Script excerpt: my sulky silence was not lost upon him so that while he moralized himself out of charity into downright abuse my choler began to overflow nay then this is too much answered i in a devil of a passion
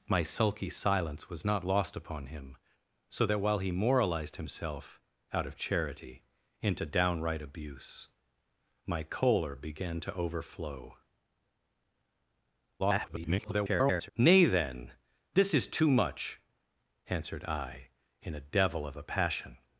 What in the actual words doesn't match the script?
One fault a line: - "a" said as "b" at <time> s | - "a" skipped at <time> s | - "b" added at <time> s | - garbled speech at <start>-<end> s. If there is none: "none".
- garbled speech at 12.8-14.1 s